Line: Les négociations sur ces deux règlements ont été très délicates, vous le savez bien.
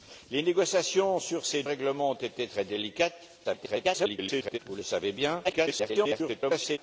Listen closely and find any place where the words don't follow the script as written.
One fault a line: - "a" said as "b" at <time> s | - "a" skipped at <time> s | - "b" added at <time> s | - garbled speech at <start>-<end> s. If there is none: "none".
- "deux" skipped at 1.6 s
- garbled speech at 3.4-4.6 s
- garbled speech at 5.4-6.8 s